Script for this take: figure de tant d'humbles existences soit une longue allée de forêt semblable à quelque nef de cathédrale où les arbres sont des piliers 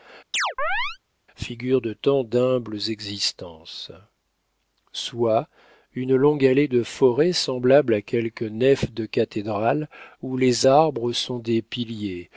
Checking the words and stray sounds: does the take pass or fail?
fail